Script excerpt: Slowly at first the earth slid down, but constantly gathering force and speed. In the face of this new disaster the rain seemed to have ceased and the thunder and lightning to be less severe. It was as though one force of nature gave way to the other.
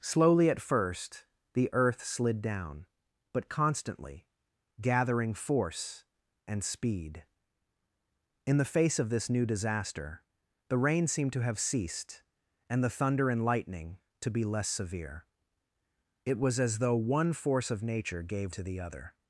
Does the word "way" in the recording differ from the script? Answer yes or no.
yes